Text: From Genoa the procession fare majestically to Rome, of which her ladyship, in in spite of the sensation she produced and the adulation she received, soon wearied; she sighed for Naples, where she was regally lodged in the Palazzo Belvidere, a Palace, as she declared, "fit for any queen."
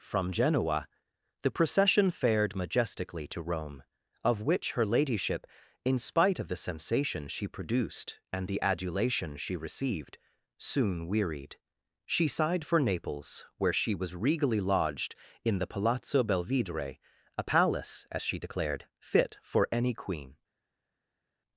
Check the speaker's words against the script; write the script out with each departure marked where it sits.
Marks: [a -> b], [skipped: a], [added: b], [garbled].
From Genoa the procession [fare -> fared] majestically to Rome, of which her ladyship, in [skipped: in] spite of the sensation she produced and the adulation she received, soon wearied; she sighed for Naples, where she was regally lodged in the Palazzo Belvidere, a Palace, as she declared, "fit for any queen."